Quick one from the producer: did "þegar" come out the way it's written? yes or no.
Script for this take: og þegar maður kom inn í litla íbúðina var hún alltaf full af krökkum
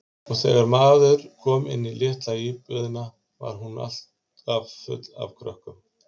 yes